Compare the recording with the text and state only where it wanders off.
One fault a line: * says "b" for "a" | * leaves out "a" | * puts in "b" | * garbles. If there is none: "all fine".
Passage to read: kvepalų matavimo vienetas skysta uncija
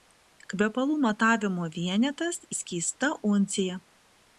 all fine